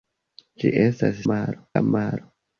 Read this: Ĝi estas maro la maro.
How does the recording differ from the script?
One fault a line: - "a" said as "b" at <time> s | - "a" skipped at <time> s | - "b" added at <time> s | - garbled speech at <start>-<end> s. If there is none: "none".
none